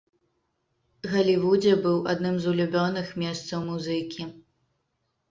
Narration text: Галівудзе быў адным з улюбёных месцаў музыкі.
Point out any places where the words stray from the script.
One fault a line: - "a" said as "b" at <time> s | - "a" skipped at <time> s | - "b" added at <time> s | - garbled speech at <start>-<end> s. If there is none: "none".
none